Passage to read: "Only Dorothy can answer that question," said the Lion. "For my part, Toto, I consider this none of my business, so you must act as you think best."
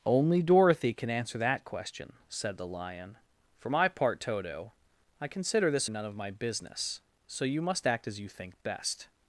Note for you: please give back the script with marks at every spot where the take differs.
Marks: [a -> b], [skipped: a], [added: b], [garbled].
"Only Dorothy can answer that question," said the Lion. "For my part, Toto, I consider this none of my business, so you must act as you think best."